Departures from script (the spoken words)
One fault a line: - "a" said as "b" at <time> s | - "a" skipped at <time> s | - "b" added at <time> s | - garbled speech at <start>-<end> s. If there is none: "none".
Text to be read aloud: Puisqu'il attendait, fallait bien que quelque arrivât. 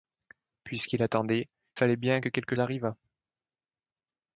none